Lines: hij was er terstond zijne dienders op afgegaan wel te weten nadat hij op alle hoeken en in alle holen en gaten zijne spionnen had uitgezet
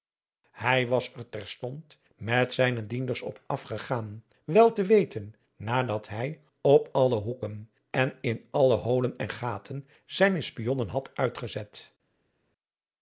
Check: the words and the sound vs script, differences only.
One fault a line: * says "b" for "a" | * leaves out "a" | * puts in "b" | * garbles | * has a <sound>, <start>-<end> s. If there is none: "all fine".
* puts in "met"